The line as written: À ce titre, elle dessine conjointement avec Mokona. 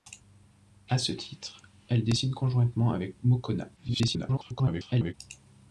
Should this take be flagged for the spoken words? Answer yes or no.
yes